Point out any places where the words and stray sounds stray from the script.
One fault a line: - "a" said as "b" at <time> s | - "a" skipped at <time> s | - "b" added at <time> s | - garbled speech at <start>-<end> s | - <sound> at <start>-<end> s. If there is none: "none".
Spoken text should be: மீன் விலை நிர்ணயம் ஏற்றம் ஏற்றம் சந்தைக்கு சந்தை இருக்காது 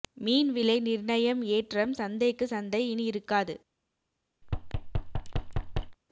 - "ஏற்றம்" skipped at 1.9 s
- "இனி" added at 2.9 s
- thud at 4.4-6.0 s